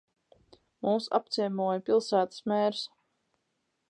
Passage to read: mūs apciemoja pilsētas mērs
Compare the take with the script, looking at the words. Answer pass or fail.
pass